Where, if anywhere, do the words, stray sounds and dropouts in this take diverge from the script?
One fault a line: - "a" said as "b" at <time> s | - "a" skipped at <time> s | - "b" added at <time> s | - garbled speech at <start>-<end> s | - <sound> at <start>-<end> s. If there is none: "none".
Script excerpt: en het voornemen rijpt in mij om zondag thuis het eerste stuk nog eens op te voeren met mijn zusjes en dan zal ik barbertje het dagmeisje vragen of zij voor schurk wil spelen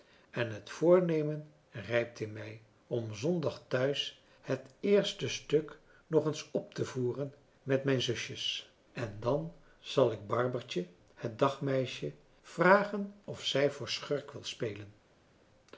none